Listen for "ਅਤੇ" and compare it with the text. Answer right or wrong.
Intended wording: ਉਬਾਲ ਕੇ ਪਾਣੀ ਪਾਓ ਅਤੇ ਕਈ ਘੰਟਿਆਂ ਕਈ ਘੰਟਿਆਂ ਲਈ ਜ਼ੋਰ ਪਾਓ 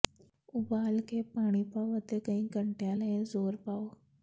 right